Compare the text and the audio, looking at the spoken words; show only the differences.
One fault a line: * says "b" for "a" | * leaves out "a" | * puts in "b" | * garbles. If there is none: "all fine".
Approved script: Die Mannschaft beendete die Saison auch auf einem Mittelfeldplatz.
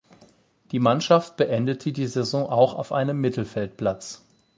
all fine